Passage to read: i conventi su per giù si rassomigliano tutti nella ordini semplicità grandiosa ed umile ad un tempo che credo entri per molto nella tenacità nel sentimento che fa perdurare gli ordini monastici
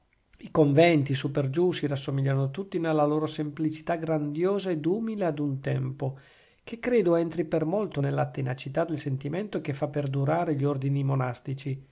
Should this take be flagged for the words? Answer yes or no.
yes